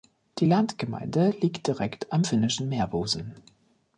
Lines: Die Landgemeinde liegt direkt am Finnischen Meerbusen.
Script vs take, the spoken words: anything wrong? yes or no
no